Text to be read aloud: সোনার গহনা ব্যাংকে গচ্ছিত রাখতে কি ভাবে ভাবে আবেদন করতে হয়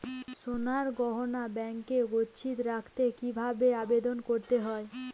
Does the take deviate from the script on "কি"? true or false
false